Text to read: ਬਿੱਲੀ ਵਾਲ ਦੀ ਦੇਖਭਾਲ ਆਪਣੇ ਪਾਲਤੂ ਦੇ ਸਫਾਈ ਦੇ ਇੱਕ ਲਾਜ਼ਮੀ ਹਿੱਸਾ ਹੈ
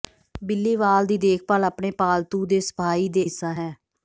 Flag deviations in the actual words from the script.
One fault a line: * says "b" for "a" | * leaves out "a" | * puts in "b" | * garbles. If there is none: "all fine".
* leaves out "ਇੱਕ ਲਾਜ਼ਮੀ"